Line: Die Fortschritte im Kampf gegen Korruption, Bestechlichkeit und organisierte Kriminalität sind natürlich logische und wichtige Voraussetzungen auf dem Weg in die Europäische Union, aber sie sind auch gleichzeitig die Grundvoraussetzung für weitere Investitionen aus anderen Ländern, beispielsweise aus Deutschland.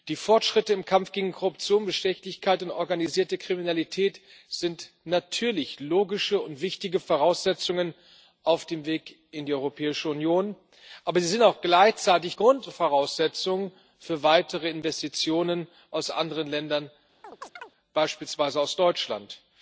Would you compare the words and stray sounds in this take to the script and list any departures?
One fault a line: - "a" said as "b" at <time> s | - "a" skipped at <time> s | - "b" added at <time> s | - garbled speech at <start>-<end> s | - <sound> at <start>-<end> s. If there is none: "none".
- "die" skipped at 12.3 s
- chirp at 17.2-17.7 s